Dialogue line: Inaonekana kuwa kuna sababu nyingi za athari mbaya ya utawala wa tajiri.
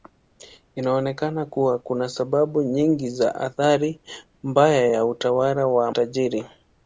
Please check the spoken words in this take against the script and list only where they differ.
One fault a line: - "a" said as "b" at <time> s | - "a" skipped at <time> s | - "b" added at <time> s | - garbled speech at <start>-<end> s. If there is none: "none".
none